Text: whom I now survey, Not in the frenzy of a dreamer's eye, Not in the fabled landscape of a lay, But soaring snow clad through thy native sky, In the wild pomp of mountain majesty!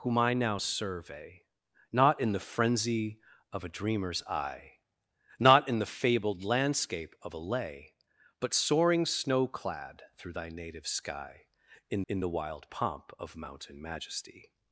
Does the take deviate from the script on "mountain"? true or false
false